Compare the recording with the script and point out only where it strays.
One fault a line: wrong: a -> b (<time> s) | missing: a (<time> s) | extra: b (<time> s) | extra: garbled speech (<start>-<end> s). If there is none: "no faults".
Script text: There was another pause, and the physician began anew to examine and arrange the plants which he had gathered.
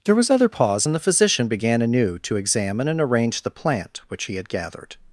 wrong: another -> other (0.3 s)
wrong: plants -> plant (3.5 s)